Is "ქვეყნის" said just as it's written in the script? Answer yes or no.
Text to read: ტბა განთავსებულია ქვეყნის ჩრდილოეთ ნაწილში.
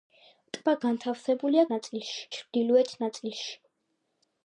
no